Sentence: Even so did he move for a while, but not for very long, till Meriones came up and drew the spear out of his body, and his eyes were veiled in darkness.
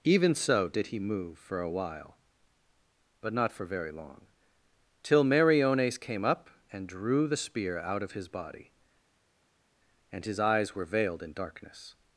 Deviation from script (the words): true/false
false